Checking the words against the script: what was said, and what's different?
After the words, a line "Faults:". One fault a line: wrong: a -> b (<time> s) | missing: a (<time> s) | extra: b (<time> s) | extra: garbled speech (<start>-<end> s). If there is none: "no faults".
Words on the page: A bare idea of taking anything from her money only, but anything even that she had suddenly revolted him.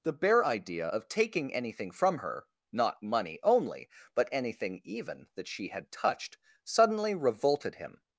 The bare idea of taking anything from her not money only, but anything even that she had touched suddenly revolted him.
Faults:
wrong: A -> The (0.0 s)
extra: not (2.7 s)
extra: touched (5.9 s)